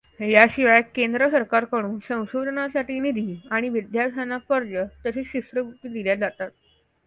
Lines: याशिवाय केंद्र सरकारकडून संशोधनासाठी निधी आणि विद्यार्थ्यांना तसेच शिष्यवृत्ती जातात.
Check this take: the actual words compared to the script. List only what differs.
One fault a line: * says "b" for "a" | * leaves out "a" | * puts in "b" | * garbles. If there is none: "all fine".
* puts in "कर्ज"
* puts in "दिल्या"